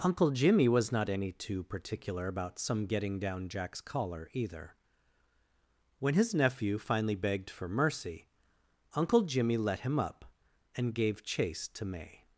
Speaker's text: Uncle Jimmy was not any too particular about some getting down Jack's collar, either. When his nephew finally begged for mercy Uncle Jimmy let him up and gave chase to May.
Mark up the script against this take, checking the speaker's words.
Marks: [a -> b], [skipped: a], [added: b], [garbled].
Uncle Jimmy was not any too particular about some getting down Jack's collar, either. When his nephew finally begged for mercy Uncle Jimmy let him up and gave chase to May.